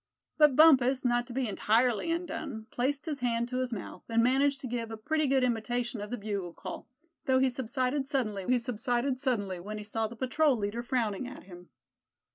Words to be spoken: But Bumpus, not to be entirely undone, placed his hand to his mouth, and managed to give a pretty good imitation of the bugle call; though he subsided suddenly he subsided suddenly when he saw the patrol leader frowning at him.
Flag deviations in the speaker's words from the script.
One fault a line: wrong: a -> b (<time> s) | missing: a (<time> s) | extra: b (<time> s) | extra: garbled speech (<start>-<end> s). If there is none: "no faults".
no faults